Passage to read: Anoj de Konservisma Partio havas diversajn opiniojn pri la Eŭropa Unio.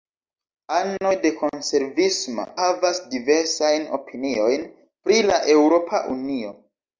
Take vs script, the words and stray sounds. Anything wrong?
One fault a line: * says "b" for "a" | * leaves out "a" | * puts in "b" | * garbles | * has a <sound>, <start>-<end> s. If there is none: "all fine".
* leaves out "Partio"